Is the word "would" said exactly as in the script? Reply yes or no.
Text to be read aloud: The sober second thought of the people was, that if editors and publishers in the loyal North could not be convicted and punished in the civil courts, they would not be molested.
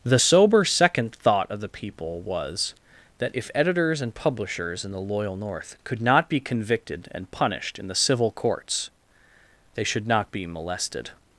no